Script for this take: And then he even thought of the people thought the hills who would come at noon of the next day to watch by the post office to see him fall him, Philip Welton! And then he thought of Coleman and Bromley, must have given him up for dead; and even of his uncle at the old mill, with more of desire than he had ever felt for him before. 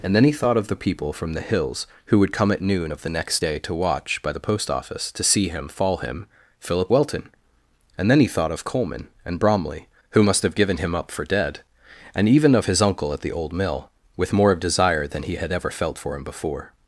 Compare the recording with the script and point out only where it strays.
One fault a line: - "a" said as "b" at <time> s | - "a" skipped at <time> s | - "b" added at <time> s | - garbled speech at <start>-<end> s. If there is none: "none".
- "even" skipped at 0.3 s
- "thought" said as "from" at 1.1 s
- "who" added at 10.1 s